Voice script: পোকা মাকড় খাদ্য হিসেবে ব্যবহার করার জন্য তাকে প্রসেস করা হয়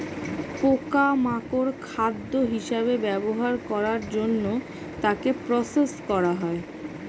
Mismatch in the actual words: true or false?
false